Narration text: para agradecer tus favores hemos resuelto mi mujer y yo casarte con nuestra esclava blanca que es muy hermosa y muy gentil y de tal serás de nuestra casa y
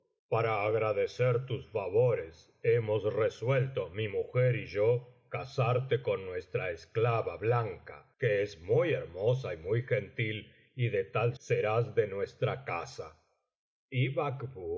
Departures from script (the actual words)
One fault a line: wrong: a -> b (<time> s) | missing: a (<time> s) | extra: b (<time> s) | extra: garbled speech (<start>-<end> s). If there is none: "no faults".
no faults